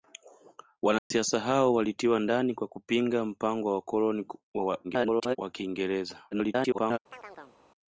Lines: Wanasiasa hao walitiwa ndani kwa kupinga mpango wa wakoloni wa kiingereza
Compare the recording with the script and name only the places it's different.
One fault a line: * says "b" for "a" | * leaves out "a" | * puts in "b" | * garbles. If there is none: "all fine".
* garbles
* garbles